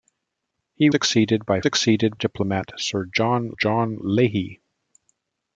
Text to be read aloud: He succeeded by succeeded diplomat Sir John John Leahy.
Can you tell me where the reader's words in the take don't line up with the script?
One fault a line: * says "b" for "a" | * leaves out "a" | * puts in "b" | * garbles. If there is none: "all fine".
all fine